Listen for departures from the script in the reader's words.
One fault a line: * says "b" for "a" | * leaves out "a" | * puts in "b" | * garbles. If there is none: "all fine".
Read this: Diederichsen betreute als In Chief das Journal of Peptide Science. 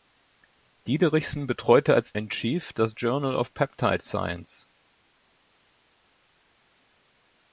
all fine